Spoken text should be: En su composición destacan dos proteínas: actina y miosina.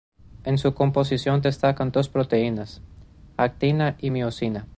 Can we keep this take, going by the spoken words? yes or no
yes